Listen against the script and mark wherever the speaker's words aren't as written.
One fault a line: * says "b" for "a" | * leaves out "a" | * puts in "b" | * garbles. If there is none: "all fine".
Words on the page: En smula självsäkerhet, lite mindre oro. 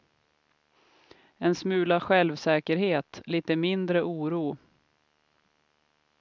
all fine